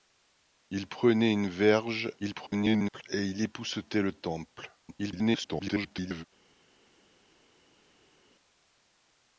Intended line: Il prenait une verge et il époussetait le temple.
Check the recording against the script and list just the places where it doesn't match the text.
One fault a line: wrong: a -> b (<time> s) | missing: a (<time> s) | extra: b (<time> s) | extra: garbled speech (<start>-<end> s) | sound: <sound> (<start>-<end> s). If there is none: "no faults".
extra: garbled speech (2.2-3.0 s)
extra: garbled speech (4.8-6.2 s)